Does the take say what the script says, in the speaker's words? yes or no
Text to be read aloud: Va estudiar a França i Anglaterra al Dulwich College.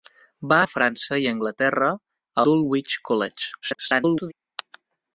no